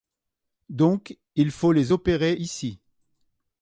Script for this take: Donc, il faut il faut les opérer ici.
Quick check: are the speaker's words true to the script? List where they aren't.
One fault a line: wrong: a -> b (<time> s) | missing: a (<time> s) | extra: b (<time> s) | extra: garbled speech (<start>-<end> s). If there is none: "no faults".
missing: il faut (1.7 s)